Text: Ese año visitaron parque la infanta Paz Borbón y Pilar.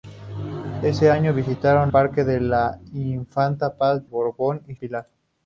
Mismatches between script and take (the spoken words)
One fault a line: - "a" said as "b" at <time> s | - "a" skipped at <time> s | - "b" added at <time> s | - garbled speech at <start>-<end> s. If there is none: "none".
none